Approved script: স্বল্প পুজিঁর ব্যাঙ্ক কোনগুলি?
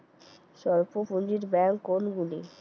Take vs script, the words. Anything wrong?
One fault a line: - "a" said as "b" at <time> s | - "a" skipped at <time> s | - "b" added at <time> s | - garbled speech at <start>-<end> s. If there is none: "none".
none